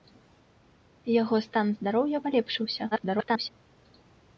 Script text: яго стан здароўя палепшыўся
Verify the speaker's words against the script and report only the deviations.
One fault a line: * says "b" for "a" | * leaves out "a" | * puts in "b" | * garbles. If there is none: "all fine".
* garbles